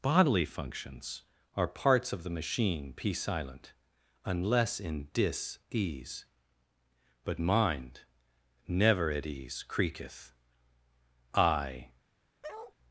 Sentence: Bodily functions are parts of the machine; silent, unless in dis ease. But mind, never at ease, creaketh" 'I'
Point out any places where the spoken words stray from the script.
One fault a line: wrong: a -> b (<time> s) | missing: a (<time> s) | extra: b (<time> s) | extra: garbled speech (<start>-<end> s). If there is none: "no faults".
extra: p (2.9 s)